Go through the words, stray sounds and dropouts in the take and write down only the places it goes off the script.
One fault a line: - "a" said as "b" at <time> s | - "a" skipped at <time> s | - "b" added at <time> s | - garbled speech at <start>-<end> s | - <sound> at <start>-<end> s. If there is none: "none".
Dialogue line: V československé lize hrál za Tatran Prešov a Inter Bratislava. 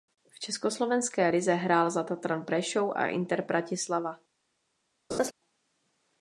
- laugh at 5.1-5.3 s